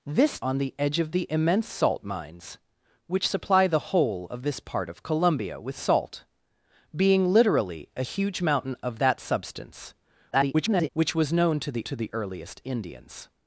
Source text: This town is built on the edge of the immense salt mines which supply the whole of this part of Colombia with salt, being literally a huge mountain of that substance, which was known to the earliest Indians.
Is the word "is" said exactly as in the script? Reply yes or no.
no